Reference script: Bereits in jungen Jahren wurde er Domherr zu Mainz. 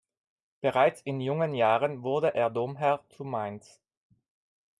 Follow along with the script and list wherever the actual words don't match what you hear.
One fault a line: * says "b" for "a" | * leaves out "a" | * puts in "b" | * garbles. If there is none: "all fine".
all fine